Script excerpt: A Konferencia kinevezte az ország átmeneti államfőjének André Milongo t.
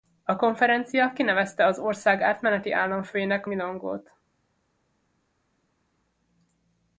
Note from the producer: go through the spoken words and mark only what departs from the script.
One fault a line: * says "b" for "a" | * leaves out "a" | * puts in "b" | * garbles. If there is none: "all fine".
* leaves out "André"